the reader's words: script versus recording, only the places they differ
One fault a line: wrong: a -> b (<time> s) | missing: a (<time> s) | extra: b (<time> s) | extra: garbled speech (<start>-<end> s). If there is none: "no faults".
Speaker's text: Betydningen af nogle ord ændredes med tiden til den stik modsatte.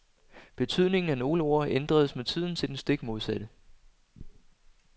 no faults